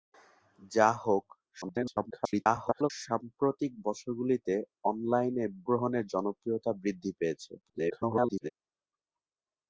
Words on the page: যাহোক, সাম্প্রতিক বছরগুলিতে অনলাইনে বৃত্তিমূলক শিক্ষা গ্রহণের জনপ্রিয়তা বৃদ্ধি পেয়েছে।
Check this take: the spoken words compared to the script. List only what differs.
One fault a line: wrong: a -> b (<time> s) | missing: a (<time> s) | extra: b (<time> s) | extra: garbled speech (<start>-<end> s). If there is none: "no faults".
extra: garbled speech (1.6-2.9 s)
missing: বৃত্তিমূলক শিক্ষা (5.4 s)
extra: garbled speech (7.6-8.5 s)